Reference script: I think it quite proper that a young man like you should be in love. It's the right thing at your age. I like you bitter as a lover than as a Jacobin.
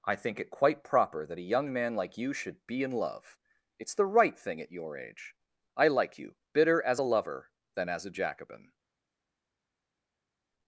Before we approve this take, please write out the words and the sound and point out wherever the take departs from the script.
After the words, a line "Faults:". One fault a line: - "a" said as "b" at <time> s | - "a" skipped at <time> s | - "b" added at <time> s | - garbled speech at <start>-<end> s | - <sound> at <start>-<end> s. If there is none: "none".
I think it quite proper that a young man like you should be in love. It's the right thing at your age. I like you bitter as a lover than as a Jacobin.
Faults:
none